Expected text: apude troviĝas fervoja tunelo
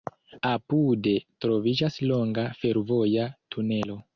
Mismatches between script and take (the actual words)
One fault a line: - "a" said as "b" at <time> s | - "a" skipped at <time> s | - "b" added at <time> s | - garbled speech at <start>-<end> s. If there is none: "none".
- "longa" added at 2.1 s